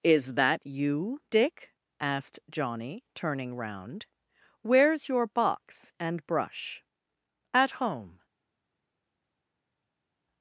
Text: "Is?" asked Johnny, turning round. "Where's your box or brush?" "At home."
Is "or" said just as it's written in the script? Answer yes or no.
no